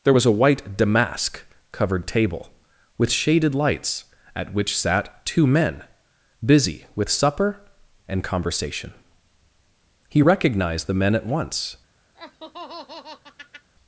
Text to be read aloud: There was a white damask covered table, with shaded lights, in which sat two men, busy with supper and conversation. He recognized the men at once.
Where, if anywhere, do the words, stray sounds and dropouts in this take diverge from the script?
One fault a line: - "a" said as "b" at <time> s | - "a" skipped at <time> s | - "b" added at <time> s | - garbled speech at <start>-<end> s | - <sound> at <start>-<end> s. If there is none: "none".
- "in" said as "at" at 4.3 s
- laugh at 12.1-13.7 s